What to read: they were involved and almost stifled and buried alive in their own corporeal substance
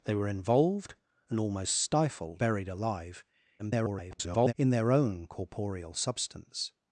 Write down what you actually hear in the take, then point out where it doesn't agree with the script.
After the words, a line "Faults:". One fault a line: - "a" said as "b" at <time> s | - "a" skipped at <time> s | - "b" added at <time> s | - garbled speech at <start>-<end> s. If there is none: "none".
they were involved and almost stifled buried alive [garbled] in their own corporeal substance
Faults:
- "and" skipped at 2.4 s
- garbled speech at 3.6-4.5 s